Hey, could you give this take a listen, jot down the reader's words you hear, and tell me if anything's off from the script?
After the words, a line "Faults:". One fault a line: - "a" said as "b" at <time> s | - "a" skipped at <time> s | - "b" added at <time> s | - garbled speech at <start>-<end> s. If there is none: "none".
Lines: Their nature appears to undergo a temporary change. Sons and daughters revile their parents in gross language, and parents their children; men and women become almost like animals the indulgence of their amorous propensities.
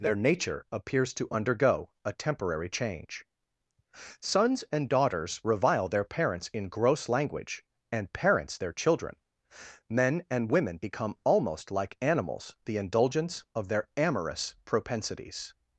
Their nature appears to undergo a temporary change. Sons and daughters revile their parents in gross language, and parents their children; men and women become almost like animals the indulgence of their amorous propensities.
Faults:
none